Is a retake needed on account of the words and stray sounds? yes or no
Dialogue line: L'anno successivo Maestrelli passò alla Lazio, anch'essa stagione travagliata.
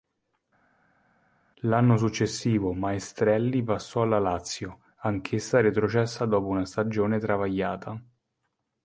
yes